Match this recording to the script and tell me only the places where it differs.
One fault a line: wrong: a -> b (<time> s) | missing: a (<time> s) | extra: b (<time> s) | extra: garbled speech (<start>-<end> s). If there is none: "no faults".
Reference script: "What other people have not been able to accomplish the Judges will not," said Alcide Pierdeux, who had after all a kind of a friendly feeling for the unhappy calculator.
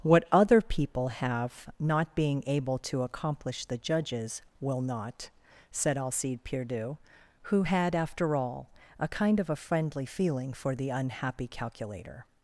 wrong: been -> being (2.1 s)